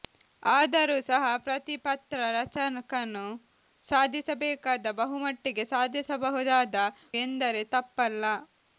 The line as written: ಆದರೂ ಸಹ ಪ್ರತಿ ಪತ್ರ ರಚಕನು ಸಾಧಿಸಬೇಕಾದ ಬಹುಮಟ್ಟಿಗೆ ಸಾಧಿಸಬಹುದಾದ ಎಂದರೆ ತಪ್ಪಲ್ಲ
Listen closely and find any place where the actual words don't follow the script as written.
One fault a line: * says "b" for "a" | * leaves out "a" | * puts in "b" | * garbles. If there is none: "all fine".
all fine